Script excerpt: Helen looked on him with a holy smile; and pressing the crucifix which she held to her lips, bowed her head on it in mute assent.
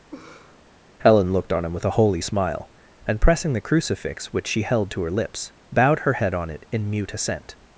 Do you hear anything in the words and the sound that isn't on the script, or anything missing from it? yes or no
yes